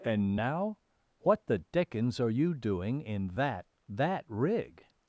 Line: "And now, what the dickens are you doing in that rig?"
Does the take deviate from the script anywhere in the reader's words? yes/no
yes